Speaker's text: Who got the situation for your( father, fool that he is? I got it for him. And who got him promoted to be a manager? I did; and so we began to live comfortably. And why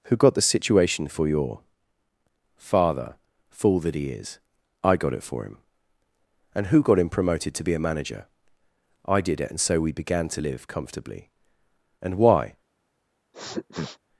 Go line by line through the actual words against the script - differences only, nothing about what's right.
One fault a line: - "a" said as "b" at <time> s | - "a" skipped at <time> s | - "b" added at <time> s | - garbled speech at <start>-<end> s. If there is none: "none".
- "it" added at 9.4 s